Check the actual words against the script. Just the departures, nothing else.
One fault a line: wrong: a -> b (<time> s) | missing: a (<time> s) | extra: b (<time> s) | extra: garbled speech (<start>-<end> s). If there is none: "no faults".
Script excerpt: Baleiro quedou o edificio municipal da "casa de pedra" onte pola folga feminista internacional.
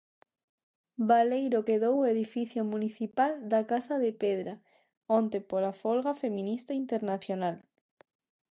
no faults